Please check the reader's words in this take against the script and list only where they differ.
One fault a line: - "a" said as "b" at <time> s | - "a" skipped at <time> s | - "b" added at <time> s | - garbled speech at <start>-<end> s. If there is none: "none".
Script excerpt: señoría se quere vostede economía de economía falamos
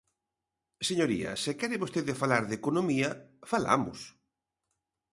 - "economía" said as "falar" at 2.2 s